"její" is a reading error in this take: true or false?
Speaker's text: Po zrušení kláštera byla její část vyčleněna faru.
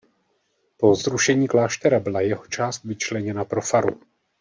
true